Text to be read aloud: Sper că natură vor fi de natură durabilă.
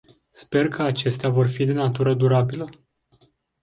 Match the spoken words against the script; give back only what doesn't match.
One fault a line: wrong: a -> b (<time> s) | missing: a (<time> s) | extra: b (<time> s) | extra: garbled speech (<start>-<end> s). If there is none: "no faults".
wrong: natură -> acestea (0.8 s)